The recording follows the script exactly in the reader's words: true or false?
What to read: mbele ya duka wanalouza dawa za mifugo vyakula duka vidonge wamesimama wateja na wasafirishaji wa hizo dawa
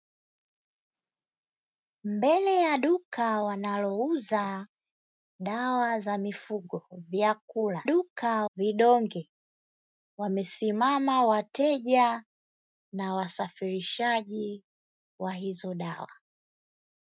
true